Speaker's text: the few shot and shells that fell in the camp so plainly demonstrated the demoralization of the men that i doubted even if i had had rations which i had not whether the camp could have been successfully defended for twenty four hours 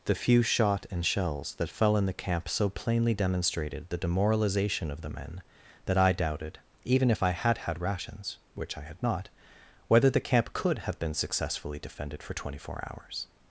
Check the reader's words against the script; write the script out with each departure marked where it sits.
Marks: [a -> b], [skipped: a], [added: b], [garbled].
the few shot and shells that fell in the camp so plainly demonstrated the demoralization of the men that i doubted even if i had had rations which i had not whether the camp could have been successfully defended for twenty four hours